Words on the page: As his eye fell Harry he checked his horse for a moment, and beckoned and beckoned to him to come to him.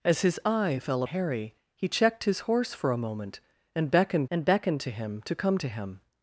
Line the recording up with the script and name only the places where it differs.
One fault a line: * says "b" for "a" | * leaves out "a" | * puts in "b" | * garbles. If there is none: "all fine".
all fine